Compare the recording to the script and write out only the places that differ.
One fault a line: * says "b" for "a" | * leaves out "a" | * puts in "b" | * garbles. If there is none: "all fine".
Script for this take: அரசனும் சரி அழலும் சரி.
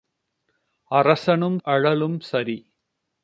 * leaves out "சரி"